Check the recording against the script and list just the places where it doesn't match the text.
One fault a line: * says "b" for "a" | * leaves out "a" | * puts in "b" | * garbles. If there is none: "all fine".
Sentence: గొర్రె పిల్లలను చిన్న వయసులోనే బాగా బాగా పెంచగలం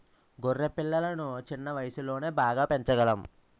* leaves out "బాగా"